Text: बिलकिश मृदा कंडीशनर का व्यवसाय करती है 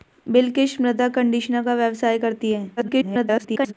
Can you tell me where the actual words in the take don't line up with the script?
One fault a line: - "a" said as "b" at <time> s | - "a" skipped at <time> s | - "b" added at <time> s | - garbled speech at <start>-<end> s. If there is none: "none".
- garbled speech at 2.8-3.7 s